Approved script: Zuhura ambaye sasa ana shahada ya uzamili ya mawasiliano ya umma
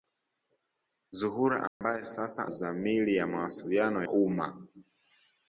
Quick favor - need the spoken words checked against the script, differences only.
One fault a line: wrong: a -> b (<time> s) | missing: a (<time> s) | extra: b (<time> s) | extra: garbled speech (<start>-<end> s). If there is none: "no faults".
missing: ana shahada ya (2.5 s)
missing: ya (4.0 s)